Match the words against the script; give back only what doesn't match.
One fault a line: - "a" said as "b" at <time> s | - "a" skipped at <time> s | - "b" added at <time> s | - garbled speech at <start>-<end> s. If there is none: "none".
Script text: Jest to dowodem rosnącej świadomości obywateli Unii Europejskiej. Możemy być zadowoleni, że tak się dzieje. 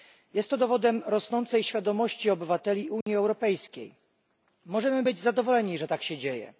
none